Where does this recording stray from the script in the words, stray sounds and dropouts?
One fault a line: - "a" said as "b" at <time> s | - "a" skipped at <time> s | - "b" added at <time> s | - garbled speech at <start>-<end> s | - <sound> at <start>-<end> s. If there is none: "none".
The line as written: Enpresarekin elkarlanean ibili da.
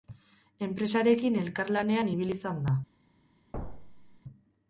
- "izan" added at 2.4 s
- thud at 3.5-4.2 s